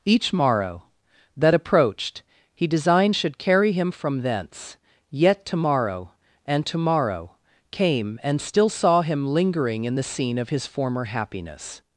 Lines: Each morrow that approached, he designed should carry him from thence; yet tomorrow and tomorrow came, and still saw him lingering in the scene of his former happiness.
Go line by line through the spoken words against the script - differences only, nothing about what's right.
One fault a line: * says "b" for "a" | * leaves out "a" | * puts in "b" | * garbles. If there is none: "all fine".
all fine